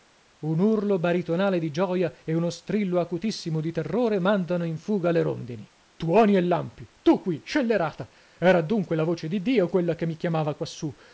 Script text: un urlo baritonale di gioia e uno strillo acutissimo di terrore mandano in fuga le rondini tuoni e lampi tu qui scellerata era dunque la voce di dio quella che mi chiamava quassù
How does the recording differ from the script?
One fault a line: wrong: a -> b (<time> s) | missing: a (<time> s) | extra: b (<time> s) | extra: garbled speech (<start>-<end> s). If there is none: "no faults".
no faults